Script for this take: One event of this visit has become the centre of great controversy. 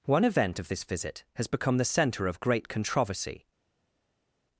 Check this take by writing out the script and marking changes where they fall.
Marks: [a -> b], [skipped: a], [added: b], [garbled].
One event of this visit has become the centre of great controversy.